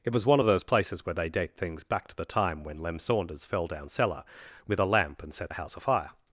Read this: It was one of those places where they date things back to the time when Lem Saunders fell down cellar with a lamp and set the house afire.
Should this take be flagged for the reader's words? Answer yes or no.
no